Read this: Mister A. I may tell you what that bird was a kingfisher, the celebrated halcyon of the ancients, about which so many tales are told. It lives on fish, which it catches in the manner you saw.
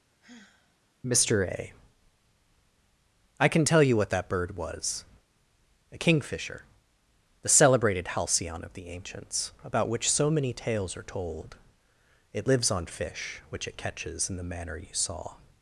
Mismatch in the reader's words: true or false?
true